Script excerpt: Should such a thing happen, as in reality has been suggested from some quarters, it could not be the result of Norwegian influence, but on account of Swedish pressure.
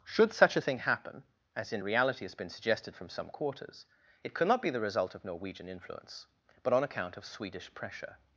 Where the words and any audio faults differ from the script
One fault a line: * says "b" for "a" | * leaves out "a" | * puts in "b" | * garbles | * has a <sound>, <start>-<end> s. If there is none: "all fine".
all fine